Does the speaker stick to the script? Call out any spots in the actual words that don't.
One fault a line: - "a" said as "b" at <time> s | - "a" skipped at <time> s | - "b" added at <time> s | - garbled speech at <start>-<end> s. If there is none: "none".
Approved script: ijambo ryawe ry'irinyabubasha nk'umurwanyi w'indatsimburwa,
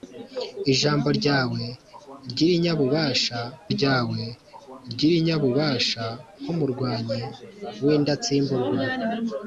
- "ryawe ry'irinyabubasha" added at 3.8 s